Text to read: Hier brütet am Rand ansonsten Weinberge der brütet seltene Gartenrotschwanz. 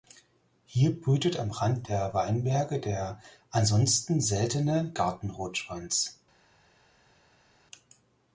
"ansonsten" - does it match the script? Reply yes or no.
no